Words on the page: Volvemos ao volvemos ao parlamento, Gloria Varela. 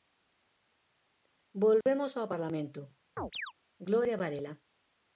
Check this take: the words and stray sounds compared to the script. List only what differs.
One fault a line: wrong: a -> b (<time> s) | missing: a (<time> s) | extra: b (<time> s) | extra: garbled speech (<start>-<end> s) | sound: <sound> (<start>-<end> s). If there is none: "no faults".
sound: dropout (1.8-1.9 s)
missing: volvemos ao (2.3 s)
sound: chirp (3.2-3.5 s)